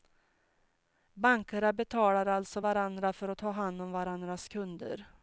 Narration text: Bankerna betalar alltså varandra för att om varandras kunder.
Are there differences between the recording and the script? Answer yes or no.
yes